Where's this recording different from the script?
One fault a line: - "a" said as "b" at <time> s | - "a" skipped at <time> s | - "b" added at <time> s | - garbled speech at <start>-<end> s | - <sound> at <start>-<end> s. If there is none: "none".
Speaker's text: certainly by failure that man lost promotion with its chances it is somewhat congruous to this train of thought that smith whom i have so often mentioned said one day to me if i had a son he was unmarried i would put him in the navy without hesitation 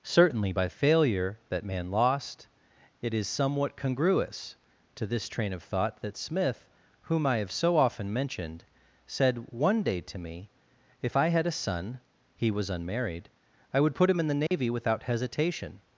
- "promotion with its chances" skipped at 2.5 s
- dropout at 14.5-14.5 s